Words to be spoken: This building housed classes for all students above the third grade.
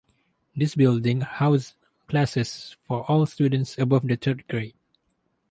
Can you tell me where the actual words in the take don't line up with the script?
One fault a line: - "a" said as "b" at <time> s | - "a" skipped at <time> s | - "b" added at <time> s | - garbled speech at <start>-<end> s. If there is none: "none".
none